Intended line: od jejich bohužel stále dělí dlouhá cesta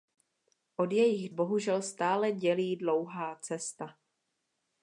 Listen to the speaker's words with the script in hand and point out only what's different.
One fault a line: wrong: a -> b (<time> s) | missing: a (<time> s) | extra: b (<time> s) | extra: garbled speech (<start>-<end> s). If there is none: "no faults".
no faults